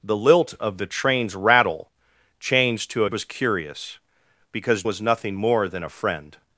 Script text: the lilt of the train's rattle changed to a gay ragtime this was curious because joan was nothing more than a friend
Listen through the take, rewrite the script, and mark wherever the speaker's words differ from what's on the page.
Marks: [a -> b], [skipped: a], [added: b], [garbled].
the lilt of the train's rattle changed to a [skipped: gay ragtime this] was curious because [skipped: joan] was nothing more than a friend